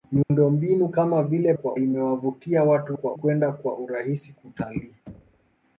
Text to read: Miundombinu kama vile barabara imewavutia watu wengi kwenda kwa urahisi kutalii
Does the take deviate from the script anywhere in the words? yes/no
yes